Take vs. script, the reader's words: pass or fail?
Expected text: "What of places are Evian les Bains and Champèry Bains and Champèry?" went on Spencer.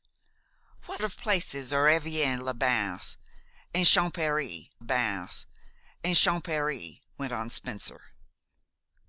pass